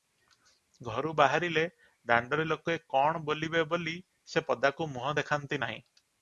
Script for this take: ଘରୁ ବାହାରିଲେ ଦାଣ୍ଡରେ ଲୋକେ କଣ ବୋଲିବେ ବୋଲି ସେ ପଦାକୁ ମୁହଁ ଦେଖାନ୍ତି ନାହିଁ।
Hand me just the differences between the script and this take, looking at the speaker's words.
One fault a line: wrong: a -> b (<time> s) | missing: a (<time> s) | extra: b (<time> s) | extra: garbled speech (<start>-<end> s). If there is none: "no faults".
no faults